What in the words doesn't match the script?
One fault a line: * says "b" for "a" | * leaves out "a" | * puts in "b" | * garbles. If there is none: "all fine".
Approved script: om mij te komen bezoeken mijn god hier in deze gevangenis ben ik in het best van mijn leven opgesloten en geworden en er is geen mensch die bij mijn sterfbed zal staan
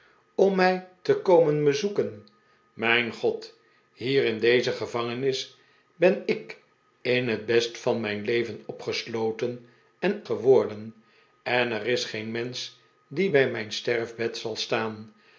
all fine